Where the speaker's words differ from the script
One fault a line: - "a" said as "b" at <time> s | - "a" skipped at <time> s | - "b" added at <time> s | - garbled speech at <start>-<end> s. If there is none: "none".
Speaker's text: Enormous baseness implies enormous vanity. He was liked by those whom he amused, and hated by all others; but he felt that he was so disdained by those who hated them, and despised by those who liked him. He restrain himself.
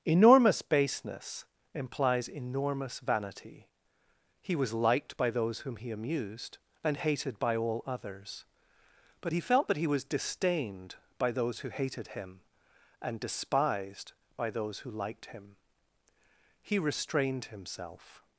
- "so" skipped at 10.1 s
- "them" said as "him" at 12.1 s
- "restrain" said as "restrained" at 16.8 s